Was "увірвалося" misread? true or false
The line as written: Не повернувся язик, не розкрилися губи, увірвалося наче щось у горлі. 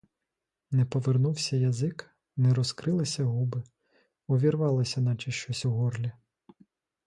false